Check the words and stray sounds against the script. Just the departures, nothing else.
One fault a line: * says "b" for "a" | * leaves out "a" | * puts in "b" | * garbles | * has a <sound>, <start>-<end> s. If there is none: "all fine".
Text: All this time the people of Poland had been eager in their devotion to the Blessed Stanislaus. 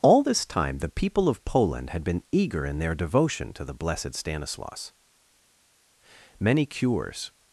* puts in "Many cures"